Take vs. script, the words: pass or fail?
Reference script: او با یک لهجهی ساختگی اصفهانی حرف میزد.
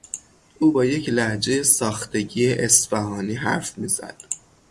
pass